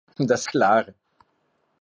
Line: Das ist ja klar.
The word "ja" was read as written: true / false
false